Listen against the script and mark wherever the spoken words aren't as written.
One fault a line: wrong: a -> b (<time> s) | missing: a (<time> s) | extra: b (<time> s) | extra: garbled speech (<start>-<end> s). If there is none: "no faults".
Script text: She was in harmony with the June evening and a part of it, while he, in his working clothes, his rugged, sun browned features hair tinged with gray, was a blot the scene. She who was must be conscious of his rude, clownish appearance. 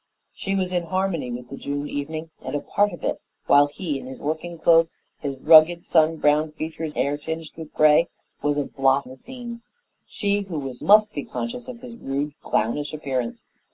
no faults